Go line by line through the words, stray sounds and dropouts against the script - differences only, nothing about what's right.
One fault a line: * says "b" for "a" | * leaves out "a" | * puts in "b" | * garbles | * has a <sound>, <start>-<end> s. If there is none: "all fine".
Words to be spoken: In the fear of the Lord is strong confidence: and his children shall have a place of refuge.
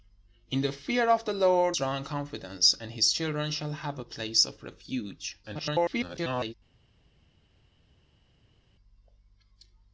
* leaves out "is"
* garbles